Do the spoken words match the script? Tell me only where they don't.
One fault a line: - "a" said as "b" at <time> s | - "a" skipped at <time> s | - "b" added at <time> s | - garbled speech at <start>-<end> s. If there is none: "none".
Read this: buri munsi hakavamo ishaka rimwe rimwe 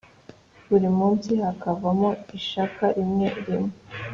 none